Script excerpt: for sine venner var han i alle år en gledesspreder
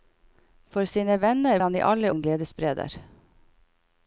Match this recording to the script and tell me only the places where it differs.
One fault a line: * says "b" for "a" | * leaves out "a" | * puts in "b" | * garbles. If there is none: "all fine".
* leaves out "var"
* leaves out "år"